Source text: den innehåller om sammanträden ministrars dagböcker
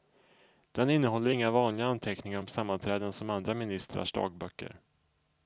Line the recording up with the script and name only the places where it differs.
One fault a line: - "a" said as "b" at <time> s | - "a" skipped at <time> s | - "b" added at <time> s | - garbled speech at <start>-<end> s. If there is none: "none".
- "inga vanliga anteckningar" added at 1.3 s
- "som andra" added at 3.1 s